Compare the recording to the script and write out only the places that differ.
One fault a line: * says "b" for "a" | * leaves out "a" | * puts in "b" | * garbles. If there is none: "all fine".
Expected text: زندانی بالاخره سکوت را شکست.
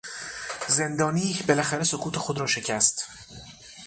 * puts in "خود"